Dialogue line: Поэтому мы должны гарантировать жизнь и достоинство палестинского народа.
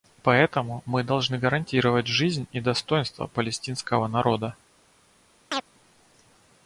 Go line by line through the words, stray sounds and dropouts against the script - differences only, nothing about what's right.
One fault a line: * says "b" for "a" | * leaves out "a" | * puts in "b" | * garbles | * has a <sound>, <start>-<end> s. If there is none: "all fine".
* has a chirp, 5.5-5.6 s